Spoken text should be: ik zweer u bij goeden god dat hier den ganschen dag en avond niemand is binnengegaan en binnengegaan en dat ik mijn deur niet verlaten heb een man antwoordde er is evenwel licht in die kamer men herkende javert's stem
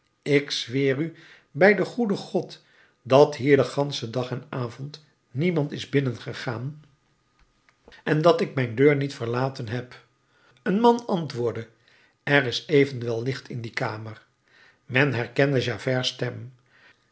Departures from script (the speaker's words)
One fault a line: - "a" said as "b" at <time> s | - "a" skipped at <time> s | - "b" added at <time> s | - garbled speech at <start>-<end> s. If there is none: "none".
- "den" added at 1.8 s
- "binnengegaan en" skipped at 8.2 s